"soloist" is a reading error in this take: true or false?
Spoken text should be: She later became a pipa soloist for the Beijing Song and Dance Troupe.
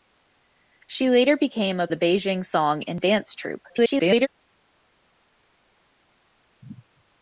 true